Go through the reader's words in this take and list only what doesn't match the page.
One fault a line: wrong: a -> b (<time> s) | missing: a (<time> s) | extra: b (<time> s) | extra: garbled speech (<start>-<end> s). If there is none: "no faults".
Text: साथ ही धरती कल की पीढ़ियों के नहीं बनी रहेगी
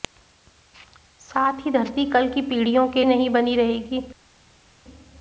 no faults